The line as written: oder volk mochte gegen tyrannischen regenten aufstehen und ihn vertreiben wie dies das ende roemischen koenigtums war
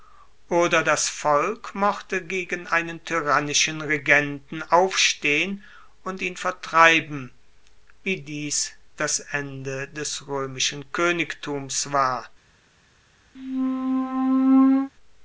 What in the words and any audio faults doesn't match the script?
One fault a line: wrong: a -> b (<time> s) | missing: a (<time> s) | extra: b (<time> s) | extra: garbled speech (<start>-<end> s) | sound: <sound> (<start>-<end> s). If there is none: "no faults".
extra: das (0.8 s)
extra: einen (2.6 s)
extra: des (9.9 s)
sound: squeak (13.3-14.9 s)